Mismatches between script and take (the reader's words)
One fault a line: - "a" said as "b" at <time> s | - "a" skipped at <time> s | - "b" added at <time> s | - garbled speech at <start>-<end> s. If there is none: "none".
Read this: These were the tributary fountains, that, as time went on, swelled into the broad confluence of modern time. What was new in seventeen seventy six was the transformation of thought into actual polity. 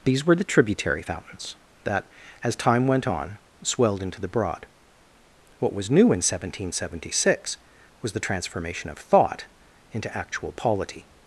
- "confluence of modern time" skipped at 4.6 s